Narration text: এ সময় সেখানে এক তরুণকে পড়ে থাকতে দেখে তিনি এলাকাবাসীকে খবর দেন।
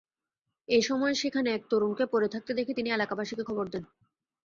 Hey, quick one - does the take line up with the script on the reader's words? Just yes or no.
yes